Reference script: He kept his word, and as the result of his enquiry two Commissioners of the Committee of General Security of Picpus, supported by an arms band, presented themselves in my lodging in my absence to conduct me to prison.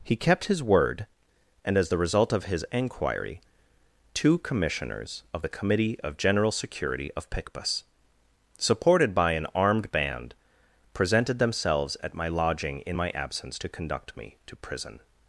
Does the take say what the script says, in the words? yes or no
no